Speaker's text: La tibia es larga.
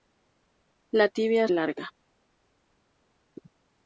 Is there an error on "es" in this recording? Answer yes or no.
no